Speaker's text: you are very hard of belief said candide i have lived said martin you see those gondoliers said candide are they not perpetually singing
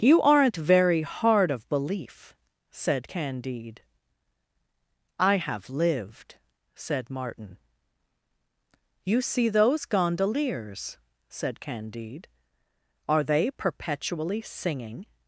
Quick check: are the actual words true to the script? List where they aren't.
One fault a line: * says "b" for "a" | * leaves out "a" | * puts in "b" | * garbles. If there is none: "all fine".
* says "aren't" for "are"
* leaves out "not"